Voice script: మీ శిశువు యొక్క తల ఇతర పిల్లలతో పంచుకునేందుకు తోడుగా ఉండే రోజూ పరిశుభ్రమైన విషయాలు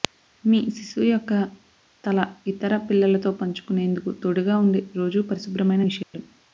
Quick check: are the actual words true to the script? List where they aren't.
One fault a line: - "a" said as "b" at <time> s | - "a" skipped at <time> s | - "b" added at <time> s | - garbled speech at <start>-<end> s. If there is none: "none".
none